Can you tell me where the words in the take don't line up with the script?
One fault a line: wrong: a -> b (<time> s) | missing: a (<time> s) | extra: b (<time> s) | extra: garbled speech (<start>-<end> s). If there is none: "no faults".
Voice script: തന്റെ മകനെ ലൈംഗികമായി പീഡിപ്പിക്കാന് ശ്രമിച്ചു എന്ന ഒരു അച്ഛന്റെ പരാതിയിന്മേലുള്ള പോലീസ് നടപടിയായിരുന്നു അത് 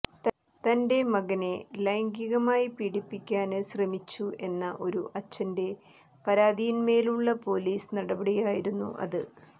no faults